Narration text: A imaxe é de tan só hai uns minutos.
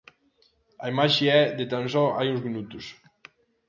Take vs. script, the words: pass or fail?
pass